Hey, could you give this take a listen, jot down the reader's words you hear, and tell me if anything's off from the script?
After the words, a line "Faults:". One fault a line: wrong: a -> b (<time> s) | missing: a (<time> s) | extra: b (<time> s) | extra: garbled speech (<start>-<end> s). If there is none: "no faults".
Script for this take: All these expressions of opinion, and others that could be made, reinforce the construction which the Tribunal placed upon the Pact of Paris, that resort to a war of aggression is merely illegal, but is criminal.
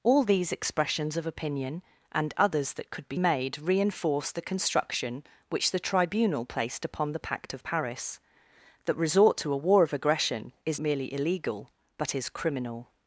All these expressions of opinion, and others that could be made, reinforce the construction which the Tribunal placed upon the Pact of Paris, that resort to a war of aggression is merely illegal, but is criminal.
Faults:
no faults